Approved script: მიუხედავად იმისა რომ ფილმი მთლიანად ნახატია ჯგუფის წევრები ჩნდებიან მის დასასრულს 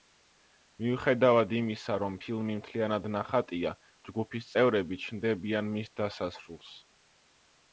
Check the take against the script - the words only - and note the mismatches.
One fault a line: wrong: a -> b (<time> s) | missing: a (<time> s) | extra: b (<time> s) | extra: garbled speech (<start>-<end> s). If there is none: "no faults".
no faults